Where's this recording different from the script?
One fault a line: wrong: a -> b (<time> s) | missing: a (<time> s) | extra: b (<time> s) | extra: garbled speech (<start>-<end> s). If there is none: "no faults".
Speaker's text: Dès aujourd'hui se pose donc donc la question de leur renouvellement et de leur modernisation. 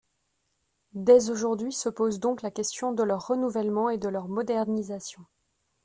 missing: donc (2.4 s)